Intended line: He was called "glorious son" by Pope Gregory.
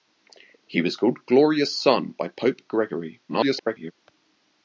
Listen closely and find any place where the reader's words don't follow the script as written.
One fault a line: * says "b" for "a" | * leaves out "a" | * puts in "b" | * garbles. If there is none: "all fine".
* garbles